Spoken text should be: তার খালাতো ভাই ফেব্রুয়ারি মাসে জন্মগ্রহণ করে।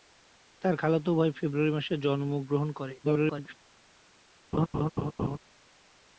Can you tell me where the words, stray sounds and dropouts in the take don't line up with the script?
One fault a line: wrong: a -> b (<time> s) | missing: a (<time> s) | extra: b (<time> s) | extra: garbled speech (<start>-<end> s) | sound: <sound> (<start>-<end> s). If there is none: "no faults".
extra: garbled speech (3.0-3.6 s)
sound: laugh (4.5-5.4 s)